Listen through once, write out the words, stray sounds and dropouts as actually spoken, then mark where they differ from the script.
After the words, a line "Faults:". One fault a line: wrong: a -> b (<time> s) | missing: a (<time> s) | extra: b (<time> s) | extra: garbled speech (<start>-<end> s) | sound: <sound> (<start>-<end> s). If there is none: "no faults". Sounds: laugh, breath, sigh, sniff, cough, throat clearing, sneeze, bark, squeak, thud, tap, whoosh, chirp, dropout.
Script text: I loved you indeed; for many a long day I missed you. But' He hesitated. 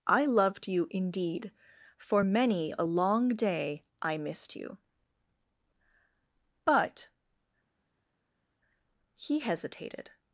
I loved you indeed; for many a long day I missed you. But' He hesitated.
Faults:
no faults